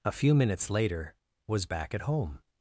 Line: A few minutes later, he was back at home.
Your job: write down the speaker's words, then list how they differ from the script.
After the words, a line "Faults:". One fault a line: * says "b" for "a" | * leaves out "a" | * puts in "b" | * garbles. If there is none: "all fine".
A few minutes later, was back at home.
Faults:
* leaves out "he"